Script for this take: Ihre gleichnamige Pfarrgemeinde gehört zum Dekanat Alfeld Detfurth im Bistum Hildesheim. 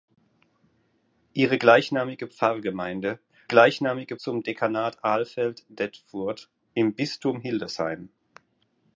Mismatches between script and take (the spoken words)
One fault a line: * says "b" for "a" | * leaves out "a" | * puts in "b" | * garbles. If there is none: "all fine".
* says "gleichnamige" for "gehört"